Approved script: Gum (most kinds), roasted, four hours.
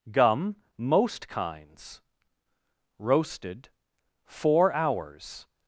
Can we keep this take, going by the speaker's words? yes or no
yes